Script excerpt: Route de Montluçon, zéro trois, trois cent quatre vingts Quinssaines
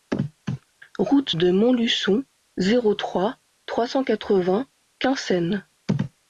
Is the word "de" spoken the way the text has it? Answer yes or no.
yes